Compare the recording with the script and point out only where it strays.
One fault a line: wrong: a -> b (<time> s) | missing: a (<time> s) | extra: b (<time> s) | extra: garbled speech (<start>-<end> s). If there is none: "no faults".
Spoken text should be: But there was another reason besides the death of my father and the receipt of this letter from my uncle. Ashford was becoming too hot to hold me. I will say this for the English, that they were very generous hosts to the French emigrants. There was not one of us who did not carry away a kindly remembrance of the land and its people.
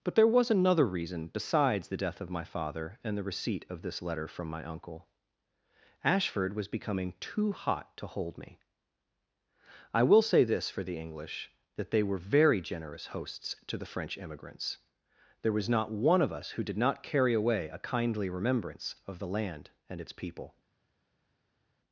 no faults